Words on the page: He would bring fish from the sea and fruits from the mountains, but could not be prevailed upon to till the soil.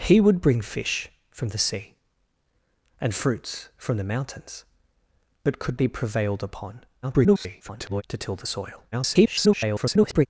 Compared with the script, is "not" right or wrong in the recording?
wrong